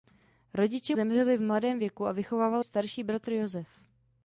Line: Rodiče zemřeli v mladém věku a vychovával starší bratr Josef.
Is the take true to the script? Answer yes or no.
yes